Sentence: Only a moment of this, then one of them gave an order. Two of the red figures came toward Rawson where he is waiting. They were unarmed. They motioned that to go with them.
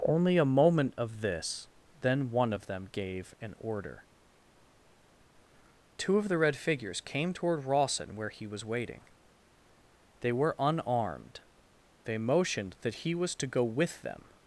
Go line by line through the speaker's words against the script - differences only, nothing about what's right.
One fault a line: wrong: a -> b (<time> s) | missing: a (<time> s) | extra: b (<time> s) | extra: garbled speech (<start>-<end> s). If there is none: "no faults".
wrong: is -> was (8.5 s)
extra: he was (13.0 s)